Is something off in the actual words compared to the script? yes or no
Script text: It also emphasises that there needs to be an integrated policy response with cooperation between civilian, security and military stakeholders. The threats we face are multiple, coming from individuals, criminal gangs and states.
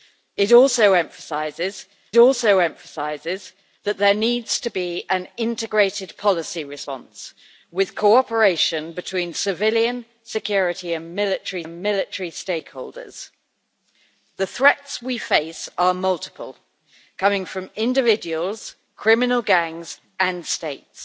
yes